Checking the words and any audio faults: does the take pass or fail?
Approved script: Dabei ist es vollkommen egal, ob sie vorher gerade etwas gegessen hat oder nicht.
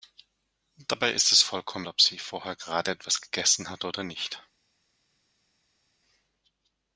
fail